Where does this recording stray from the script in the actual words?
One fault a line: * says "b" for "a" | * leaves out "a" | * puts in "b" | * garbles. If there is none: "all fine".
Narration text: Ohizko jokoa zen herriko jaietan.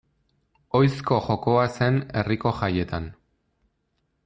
all fine